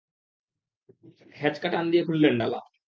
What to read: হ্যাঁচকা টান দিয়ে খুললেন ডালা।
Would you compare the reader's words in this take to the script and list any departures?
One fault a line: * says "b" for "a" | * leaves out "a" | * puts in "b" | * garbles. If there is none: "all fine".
all fine